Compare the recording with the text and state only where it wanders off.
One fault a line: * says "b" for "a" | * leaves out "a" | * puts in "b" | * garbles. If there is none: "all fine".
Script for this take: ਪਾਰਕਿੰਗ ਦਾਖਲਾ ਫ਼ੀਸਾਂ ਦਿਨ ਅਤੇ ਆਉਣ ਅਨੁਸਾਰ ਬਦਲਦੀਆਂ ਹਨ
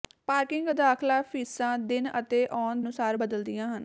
all fine